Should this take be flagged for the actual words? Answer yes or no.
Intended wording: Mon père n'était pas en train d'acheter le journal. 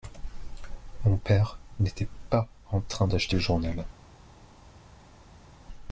no